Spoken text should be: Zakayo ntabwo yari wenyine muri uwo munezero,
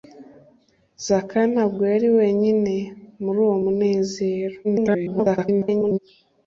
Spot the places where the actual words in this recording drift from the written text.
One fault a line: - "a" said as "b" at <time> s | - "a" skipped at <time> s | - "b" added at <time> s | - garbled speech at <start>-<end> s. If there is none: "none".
- garbled speech at 4.6-6.0 s